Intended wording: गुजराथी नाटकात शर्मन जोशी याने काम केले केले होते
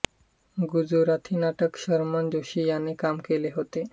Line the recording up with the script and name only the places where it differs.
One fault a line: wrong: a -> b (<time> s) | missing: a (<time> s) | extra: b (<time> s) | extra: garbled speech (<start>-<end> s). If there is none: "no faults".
missing: केले (3.5 s)